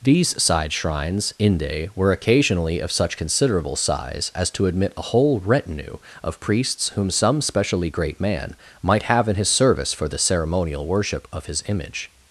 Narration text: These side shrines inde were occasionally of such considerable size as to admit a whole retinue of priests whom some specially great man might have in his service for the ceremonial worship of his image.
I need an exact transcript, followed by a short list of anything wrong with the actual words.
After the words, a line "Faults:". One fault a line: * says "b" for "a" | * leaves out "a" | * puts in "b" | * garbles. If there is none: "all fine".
These side shrines inde were occasionally of such considerable size as to admit a whole retinue of priests whom some specially great man might have in his service for the ceremonial worship of his image.
Faults:
all fine